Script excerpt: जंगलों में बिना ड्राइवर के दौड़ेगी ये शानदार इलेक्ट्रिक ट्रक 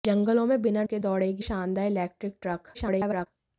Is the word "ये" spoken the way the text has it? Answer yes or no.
no